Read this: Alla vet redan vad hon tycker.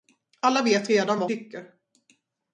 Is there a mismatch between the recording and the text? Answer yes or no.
yes